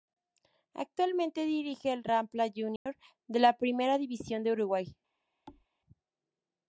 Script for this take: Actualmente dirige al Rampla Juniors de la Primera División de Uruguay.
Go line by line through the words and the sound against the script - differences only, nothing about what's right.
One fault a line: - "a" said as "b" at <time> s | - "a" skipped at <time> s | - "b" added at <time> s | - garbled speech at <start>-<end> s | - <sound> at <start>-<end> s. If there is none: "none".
- dropout at 2.8-2.9 s
- thud at 5.5-5.7 s